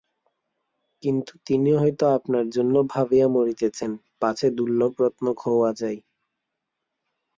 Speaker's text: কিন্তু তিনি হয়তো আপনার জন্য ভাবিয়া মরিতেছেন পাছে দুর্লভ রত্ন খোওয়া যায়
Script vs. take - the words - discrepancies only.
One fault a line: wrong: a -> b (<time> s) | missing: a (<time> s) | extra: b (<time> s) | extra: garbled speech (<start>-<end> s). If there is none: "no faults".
no faults